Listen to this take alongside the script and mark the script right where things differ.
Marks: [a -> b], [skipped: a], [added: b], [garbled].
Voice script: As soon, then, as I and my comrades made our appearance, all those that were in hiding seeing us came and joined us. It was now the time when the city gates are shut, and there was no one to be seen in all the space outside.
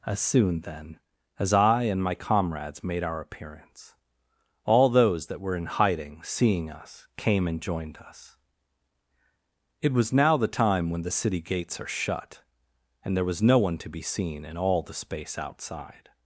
As soon, then, as I and my comrades made our appearance, all those that were in hiding seeing us came and joined us. It was now the time when the city gates are shut, and there was no one to be seen in all the space outside.